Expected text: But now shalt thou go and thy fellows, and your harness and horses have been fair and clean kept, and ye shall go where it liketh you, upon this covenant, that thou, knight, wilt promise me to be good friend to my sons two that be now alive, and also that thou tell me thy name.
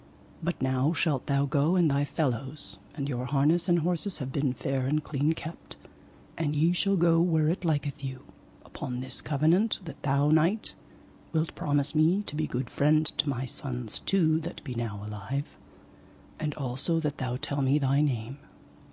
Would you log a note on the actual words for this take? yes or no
no